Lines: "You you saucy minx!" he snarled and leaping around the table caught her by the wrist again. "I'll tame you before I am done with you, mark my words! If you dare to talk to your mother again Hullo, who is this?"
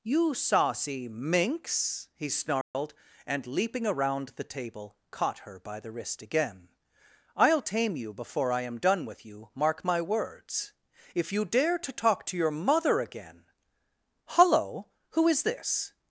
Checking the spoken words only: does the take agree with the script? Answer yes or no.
no